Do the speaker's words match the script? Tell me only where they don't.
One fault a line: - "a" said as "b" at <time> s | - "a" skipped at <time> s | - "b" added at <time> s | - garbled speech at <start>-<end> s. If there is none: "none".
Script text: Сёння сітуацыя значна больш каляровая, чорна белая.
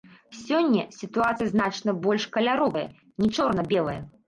- "не" added at 3.2 s